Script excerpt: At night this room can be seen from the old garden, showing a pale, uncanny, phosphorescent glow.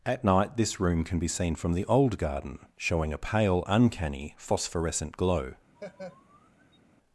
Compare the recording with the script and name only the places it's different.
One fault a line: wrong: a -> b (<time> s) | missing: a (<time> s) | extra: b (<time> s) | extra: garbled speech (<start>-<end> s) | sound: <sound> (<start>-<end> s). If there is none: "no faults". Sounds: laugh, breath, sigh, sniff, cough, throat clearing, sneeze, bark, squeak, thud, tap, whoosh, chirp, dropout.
sound: laugh (5.7-6.8 s)